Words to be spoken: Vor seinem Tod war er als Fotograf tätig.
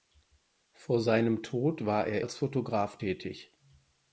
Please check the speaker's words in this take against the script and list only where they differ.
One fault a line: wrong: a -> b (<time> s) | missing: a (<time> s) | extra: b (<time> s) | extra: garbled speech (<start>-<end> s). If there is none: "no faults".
no faults